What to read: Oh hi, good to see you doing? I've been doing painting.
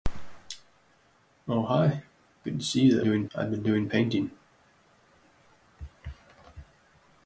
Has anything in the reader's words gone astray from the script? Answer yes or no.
no